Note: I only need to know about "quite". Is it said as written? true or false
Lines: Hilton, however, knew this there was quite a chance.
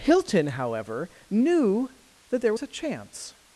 false